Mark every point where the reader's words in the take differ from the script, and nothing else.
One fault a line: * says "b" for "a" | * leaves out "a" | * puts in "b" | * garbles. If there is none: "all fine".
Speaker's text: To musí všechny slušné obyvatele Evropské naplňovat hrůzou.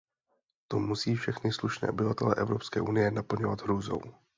* puts in "unie"